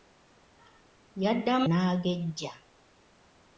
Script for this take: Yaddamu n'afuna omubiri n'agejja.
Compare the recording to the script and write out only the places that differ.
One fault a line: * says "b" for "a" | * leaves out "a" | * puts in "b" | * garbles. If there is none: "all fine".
* leaves out "n'afuna omubiri"